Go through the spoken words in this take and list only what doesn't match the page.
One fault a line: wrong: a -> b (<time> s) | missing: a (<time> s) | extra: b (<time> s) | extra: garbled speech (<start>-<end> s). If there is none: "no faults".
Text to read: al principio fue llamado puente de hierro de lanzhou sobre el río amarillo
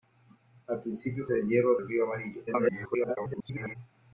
missing: fue llamado puente (1.3 s)
missing: de lanzhou sobre (1.8 s)
extra: garbled speech (2.5-3.8 s)